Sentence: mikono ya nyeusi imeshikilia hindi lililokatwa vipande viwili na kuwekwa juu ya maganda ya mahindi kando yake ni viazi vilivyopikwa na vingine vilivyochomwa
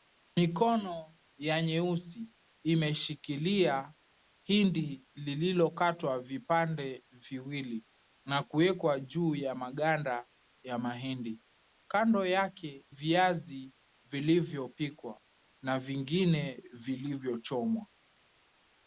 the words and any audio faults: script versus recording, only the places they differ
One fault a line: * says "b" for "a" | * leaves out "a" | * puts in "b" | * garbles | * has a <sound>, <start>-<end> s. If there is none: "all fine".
* leaves out "ni"